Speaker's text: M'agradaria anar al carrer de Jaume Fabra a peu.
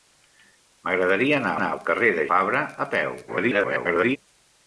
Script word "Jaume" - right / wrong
wrong